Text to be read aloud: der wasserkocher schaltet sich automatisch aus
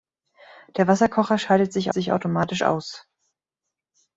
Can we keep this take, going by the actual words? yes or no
no